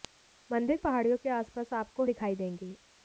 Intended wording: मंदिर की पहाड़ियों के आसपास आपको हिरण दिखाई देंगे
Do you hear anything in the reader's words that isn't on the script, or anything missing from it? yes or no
yes